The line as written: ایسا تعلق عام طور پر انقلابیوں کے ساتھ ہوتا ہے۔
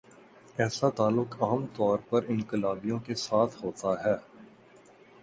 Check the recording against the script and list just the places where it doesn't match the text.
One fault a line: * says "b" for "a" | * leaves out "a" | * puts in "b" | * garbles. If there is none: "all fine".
all fine